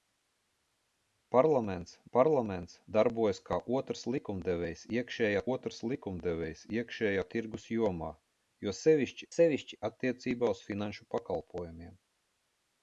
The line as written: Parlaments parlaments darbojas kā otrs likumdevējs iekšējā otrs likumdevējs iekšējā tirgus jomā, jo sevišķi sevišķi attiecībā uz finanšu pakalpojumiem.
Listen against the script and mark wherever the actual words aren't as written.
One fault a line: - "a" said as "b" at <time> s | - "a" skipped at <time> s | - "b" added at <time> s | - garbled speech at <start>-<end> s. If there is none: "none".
none